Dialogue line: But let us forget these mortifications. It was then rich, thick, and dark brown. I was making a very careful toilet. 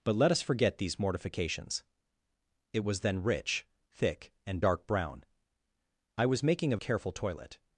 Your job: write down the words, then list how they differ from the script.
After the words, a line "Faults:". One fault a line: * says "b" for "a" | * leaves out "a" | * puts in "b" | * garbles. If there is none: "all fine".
But let us forget these mortifications. It was then rich, thick, and dark brown. I was making a careful toilet.
Faults:
* leaves out "very"